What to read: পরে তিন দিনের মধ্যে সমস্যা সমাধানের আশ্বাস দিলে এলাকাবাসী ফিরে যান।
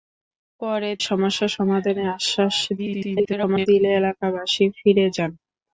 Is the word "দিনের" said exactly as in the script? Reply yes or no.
no